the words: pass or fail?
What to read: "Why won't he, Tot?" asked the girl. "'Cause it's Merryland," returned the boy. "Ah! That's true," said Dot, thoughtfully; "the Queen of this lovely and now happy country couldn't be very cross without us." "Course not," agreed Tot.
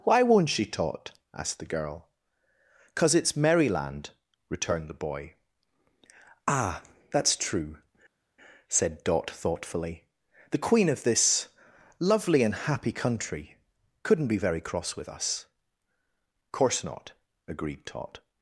fail